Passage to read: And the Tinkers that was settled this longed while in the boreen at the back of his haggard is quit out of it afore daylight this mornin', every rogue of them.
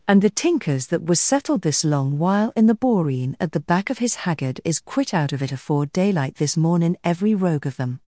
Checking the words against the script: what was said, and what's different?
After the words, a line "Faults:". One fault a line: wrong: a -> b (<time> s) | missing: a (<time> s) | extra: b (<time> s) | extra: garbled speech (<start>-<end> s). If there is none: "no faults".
And the Tinkers that was settled this long while in the boreen at the back of his haggard is quit out of it afore daylight this mornin', every rogue of them.
Faults:
wrong: longed -> long (1.9 s)